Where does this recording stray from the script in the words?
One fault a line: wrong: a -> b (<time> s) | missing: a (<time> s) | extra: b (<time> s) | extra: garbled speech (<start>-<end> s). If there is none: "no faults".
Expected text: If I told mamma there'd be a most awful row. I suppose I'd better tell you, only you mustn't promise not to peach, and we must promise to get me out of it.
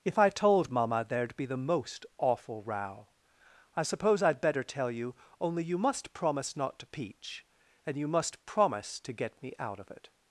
wrong: a -> the (1.4 s)
wrong: mustn't -> must (5.8 s)
wrong: we -> you (8.0 s)